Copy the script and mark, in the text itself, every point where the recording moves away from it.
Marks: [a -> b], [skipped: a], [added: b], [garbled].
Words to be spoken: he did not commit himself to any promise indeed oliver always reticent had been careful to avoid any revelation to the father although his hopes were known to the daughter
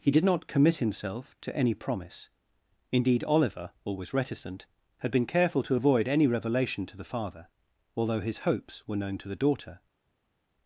he did not commit himself to any promise indeed oliver always reticent had been careful to avoid any revelation to the father although his hopes were known to the daughter